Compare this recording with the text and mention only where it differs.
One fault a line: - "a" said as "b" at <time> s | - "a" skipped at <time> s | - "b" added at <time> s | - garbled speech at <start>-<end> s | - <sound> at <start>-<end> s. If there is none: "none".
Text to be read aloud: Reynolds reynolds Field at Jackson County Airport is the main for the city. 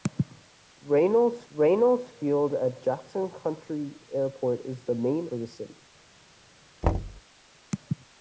- thud at 6.8-7.2 s